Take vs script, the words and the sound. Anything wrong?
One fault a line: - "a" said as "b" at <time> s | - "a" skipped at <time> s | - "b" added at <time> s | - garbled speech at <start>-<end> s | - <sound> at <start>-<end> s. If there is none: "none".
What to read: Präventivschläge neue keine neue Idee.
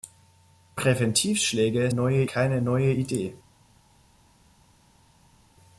none